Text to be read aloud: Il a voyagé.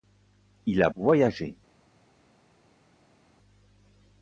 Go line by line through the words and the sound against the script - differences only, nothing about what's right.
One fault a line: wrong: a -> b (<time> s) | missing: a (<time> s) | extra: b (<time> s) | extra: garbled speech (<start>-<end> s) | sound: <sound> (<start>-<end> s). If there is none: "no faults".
no faults